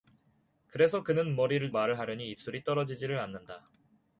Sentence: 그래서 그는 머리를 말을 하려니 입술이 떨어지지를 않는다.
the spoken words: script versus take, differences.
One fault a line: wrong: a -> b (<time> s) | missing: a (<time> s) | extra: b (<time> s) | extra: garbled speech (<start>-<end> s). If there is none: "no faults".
no faults